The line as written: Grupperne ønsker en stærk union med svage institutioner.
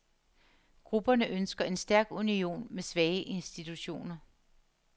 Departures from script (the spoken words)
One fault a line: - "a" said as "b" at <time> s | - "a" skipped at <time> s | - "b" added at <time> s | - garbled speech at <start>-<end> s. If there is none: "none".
none